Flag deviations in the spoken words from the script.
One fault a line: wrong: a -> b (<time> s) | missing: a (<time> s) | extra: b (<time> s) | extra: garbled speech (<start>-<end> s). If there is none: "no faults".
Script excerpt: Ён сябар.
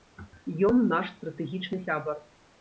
extra: наш стратэгічны (0.9 s)